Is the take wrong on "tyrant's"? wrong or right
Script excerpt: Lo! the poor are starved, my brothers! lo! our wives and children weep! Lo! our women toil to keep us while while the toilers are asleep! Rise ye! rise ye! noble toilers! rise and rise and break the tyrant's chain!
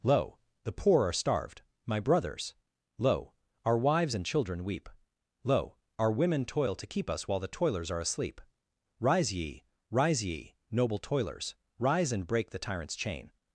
right